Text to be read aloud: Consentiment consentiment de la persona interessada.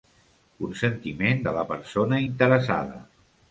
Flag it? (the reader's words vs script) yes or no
yes